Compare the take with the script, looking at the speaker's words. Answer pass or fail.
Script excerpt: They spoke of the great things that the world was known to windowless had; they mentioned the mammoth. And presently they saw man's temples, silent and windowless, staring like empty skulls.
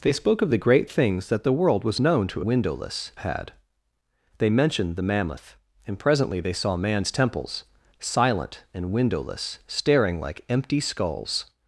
pass